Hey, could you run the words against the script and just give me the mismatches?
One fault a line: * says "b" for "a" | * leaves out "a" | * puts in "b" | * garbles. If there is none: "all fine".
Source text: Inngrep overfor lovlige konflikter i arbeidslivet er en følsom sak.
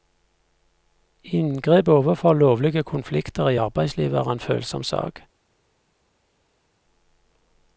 all fine